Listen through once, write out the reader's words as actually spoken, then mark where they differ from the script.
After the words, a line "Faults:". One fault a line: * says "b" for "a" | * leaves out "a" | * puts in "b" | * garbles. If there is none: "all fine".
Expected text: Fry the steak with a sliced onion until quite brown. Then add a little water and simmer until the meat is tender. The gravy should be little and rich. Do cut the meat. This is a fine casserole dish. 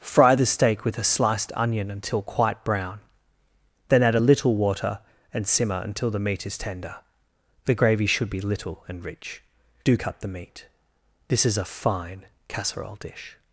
Fry the steak with a sliced onion until quite brown. Then add a little water and simmer until the meat is tender. The gravy should be little and rich. Do cut the meat. This is a fine casserole dish.
Faults:
all fine